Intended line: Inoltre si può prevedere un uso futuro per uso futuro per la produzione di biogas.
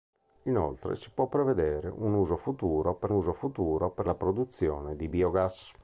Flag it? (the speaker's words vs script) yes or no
no